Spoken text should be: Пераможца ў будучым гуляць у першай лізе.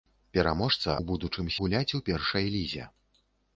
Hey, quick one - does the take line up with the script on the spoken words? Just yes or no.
yes